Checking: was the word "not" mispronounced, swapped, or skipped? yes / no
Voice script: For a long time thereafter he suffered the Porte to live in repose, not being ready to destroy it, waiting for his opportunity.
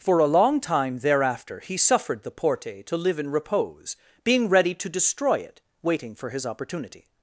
yes